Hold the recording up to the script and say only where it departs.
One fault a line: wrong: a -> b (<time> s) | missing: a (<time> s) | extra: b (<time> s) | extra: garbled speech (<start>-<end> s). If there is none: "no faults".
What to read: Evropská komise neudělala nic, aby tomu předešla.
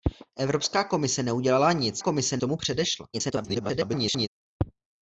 wrong: aby -> komise (2.0 s)
extra: garbled speech (3.1-4.3 s)